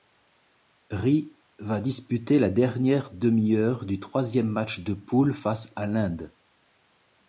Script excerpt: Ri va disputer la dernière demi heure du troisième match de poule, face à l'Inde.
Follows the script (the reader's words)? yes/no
yes